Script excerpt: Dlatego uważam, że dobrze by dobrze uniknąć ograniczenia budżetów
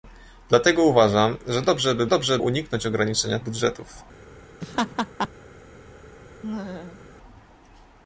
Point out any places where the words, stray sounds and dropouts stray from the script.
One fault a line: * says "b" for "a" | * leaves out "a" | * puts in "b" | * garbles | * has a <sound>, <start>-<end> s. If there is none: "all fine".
* has a laugh, 4.6-5.3 s
* has a laugh, 6.4-7.1 s